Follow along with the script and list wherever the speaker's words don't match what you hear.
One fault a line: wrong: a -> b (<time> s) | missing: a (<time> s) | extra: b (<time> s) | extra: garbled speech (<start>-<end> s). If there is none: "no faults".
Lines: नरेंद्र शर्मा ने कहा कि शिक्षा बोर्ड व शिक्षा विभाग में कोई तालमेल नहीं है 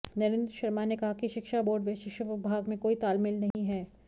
no faults